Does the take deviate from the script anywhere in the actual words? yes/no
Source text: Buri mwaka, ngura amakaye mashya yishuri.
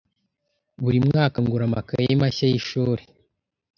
no